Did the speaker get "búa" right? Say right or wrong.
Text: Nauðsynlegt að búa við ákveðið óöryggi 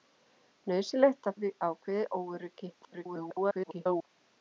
wrong